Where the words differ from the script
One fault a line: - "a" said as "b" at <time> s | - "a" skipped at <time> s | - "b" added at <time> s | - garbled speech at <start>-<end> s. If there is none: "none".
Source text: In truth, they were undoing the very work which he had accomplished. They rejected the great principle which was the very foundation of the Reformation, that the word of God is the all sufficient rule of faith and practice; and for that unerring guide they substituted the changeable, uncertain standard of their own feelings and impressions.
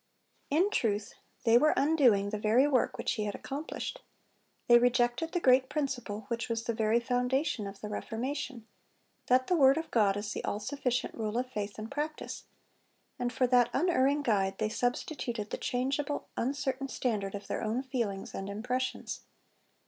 none